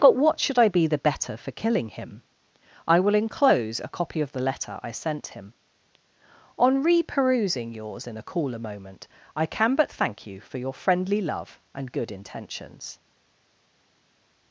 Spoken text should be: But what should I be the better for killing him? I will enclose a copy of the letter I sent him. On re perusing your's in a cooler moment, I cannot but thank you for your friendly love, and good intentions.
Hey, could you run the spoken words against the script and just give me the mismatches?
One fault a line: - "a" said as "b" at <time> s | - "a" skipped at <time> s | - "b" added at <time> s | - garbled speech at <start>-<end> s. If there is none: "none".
- "cannot" said as "can" at 9.4 s